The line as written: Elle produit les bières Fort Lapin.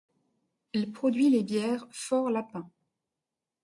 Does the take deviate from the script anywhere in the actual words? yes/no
no